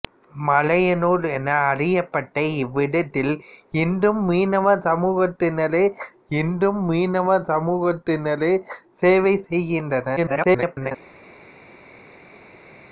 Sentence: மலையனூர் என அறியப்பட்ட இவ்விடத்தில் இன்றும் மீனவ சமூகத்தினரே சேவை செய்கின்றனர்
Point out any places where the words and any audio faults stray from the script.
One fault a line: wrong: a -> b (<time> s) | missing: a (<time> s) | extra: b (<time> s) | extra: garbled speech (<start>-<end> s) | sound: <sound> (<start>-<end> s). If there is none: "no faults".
extra: இன்றும் மீனவ சமூகத்தினரே (6.3 s)
extra: garbled speech (10.2-10.9 s)